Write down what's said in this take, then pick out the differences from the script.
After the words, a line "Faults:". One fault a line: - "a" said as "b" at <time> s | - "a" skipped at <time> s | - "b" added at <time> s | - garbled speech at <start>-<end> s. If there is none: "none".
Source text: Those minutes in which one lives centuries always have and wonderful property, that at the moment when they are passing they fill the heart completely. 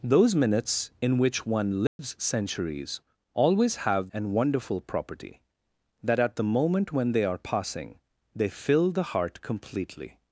Those minutes in which one lives centuries always have and wonderful property, that at the moment when they are passing they fill the heart completely.
Faults:
none